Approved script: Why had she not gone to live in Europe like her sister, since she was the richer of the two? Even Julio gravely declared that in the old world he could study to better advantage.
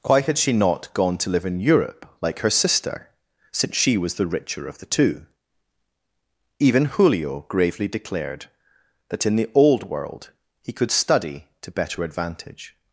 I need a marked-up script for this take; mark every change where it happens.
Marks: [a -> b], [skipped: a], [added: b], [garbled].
Why had she not gone to live in Europe like her sister, since she was the richer of the two? Even Julio gravely declared that in the old world he could study to better advantage.